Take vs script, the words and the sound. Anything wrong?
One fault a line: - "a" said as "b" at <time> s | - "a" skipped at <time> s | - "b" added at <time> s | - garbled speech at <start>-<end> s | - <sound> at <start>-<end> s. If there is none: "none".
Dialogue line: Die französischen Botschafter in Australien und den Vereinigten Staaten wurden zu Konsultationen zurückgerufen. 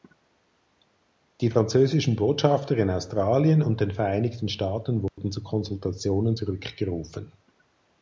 - dropout at 5.1-5.2 s